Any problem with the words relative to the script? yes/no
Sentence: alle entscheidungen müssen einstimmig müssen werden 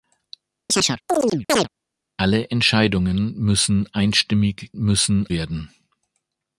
no